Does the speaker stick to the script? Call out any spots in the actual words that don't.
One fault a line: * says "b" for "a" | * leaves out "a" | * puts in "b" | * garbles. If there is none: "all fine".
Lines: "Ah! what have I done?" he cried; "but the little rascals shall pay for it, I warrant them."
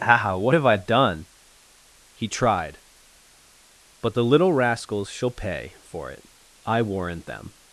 * says "tried" for "cried"